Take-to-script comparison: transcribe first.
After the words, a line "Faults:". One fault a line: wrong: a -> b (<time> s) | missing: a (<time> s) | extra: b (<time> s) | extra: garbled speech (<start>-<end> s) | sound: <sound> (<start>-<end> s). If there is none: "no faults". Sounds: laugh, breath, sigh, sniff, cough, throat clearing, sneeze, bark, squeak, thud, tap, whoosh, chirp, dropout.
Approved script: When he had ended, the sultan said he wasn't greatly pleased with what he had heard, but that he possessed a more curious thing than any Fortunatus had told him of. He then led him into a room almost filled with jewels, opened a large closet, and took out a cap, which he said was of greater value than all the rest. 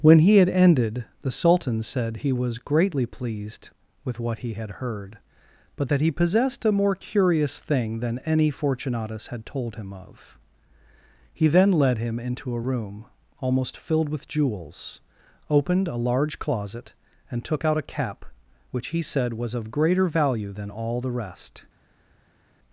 When he had ended, the sultan said he was greatly pleased with what he had heard, but that he possessed a more curious thing than any Fortunatus had told him of. He then led him into a room almost filled with jewels, opened a large closet, and took out a cap, which he said was of greater value than all the rest.
Faults:
wrong: wasn't -> was (2.3 s)